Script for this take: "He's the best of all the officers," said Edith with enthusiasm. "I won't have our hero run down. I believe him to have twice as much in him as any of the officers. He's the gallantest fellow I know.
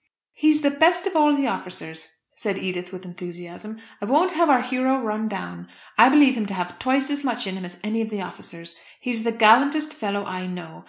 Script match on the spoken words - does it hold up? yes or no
yes